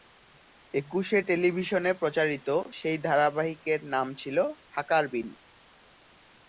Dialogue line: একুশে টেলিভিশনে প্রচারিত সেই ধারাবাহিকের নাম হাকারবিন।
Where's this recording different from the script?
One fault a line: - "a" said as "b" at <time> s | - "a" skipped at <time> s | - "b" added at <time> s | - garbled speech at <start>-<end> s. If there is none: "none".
- "ছিল" added at 4.1 s